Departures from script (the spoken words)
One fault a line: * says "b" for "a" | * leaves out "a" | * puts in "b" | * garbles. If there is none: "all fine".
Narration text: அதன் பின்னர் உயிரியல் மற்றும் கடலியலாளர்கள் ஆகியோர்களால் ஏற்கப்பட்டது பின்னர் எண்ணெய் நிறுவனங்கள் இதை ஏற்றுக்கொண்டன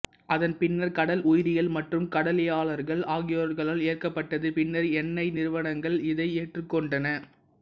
* puts in "கடல்"